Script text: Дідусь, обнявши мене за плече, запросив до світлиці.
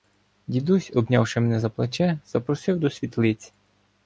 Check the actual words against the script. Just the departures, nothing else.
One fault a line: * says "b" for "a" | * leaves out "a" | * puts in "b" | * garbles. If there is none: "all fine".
all fine